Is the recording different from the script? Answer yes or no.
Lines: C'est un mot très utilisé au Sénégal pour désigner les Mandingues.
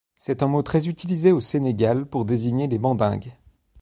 no